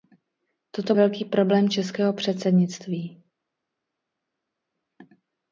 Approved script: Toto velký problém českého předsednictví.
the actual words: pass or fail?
pass